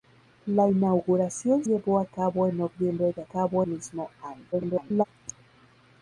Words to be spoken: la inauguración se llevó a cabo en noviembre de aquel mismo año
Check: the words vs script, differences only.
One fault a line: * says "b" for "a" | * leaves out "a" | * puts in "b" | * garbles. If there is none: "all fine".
* leaves out "se"
* says "cabo" for "aquel"
* garbles